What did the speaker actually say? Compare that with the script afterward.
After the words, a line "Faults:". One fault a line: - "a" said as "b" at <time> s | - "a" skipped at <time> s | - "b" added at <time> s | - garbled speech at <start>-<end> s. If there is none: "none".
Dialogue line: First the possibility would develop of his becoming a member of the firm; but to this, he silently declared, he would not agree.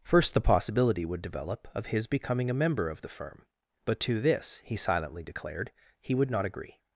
First the possibility would develop of his becoming a member of the firm; but to this, he silently declared, he would not agree.
Faults:
none